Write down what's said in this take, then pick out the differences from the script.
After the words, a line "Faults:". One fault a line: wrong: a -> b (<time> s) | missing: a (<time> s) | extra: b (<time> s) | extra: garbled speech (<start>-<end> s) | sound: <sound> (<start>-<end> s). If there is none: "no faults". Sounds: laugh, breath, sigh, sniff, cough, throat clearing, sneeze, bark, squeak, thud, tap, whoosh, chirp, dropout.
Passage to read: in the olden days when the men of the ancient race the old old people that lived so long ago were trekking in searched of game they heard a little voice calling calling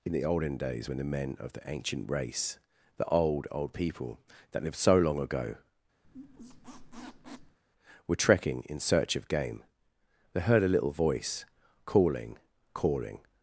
in the olden days when the men of the ancient race the old old people that lived so long ago were trekking in search of game they heard a little voice calling calling
Faults:
sound: squeak (6.0-7.6 s)
wrong: searched -> search (8.8 s)